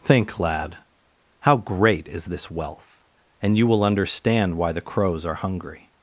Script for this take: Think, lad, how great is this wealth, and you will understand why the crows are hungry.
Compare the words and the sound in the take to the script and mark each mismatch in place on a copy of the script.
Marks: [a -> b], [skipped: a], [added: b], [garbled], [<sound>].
Think, lad, how great is this wealth, and you will understand why the crows are hungry.